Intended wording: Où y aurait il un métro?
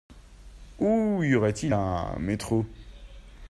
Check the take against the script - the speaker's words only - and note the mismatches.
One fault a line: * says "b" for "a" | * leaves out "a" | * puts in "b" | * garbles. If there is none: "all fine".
all fine